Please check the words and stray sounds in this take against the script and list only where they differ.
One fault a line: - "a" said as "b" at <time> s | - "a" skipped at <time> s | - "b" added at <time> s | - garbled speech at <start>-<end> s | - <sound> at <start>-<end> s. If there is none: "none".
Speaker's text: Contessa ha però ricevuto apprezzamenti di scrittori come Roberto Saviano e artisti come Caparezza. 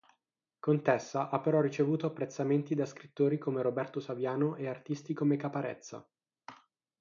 - "di" said as "da" at 2.7 s